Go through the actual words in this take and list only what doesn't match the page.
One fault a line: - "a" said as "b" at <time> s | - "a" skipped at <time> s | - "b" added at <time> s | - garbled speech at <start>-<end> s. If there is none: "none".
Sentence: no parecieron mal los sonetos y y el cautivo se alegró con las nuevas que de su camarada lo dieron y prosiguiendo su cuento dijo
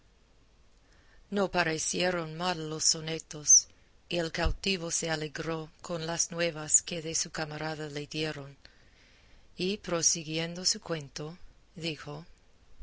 - "y" skipped at 4.2 s
- "lo" said as "le" at 7.9 s